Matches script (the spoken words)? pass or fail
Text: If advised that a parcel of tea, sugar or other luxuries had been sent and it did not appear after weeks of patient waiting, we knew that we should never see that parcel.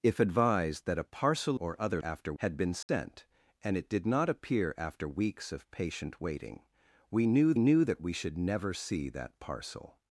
fail